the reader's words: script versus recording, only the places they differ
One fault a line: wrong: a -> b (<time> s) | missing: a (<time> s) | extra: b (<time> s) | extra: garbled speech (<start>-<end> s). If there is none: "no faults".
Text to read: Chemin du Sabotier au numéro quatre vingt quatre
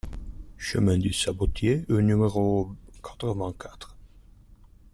no faults